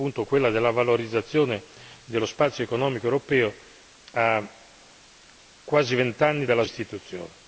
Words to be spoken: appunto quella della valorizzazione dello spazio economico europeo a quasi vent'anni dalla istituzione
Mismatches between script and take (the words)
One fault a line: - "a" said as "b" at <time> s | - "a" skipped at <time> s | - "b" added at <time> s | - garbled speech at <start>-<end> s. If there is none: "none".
none